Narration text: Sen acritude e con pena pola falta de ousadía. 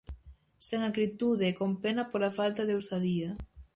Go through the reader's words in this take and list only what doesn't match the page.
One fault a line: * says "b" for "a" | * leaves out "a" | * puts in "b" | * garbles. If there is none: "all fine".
all fine